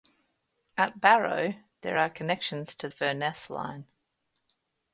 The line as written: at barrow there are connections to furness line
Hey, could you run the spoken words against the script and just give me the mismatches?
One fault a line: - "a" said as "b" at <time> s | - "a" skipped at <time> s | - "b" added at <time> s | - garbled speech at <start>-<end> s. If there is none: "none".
none